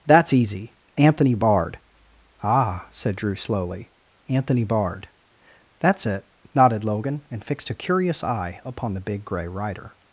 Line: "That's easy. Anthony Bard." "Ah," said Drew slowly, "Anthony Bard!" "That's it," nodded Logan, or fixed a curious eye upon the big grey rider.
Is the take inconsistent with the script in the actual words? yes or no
yes